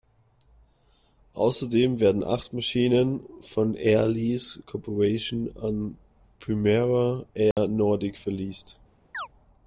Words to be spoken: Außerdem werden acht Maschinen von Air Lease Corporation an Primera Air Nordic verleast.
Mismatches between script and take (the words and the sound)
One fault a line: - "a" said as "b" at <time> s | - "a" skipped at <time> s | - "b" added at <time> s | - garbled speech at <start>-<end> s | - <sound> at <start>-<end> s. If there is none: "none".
- dropout at 7.5-7.6 s
- chirp at 9.1-9.3 s